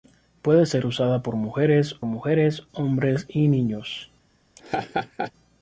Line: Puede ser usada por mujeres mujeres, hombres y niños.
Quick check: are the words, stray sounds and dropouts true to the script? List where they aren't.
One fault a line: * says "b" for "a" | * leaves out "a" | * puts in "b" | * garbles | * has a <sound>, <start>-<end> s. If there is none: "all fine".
* has a laugh, 4.6-5.3 s